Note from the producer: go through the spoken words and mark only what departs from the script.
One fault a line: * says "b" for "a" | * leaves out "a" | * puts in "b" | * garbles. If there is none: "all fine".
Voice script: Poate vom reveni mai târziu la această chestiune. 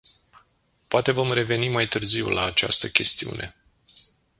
all fine